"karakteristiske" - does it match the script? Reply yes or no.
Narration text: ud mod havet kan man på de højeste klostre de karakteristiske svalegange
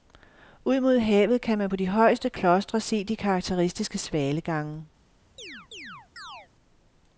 yes